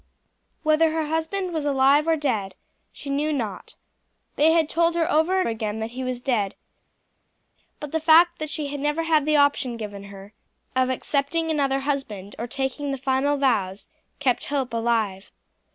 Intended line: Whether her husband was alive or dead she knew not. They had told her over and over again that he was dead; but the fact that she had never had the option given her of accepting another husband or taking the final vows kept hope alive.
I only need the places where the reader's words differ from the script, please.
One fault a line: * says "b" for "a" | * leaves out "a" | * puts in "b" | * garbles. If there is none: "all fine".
* leaves out "over"